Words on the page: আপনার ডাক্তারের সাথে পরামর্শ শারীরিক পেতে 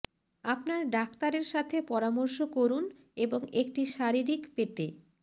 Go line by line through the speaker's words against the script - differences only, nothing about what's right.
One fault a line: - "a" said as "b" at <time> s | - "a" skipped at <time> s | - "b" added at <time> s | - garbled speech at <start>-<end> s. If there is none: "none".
- "করুন এবং একটি" added at 2.5 s